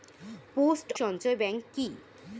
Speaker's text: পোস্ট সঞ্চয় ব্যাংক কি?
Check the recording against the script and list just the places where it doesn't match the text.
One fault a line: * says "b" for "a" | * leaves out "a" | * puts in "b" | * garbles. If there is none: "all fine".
all fine